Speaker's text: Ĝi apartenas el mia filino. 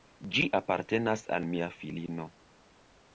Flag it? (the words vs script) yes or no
yes